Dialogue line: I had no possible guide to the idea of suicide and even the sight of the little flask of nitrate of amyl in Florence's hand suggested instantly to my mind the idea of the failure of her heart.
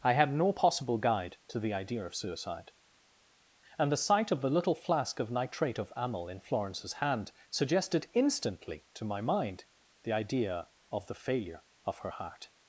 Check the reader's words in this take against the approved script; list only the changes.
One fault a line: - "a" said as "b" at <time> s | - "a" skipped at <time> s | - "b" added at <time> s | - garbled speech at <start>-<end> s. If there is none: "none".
- "even" skipped at 3.9 s